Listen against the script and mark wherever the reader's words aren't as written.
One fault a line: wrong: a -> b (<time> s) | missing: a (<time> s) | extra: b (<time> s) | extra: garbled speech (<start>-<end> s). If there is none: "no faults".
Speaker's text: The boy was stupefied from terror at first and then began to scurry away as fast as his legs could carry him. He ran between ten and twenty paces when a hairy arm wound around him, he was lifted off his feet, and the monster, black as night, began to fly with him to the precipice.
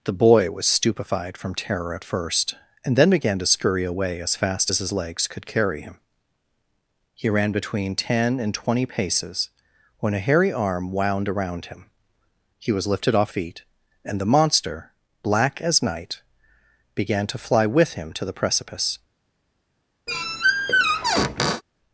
missing: his (13.3 s)